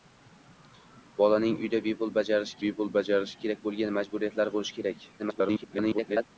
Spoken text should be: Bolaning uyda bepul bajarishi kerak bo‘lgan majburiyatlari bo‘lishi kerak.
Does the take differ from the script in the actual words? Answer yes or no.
yes